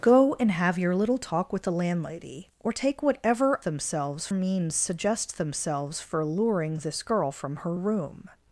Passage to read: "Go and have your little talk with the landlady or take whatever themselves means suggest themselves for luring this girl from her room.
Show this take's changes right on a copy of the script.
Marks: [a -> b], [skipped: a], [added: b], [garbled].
"Go and have your little talk with the landlady or take whatever themselves means suggest themselves for luring this girl from her room.